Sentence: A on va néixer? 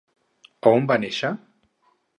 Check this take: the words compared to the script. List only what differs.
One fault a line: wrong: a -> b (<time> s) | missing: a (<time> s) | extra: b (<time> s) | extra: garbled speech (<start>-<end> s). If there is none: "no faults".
no faults